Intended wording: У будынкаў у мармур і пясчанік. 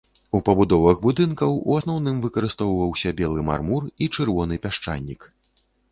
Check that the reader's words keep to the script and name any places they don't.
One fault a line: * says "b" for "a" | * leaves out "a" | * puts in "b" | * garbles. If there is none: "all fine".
* puts in "пабудовах"
* puts in "асноўным выкарыстоўваўся белы"
* puts in "чырвоны"